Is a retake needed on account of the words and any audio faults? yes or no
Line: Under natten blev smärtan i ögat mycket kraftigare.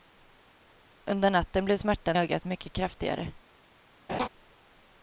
yes